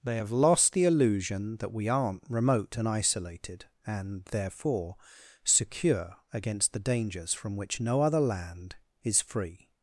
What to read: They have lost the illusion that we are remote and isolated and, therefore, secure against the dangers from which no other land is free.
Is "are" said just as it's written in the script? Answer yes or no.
no